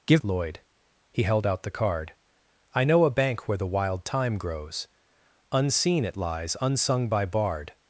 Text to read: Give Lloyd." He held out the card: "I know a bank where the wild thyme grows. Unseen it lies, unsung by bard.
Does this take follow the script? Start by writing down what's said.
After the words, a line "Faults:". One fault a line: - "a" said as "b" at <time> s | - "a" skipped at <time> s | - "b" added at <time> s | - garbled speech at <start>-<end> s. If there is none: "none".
Give Lloyd." He held out the card: "I know a bank where the wild thyme grows. Unseen it lies, unsung by bard.
Faults:
none